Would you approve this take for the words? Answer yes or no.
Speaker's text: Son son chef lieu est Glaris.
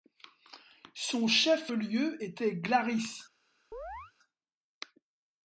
no